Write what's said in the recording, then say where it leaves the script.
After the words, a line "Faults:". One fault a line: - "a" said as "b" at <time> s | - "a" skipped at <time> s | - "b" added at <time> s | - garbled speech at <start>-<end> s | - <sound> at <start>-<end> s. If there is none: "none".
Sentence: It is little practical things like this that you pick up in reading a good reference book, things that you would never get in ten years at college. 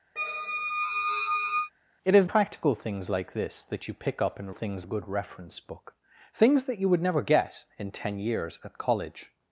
It is practical things like this that you pick up in things a good reference book, things that you would never get in ten years at college.
Faults:
- squeak at 0.2-1.7 s
- "little" skipped at 2.3 s
- "reading" said as "things" at 4.5 s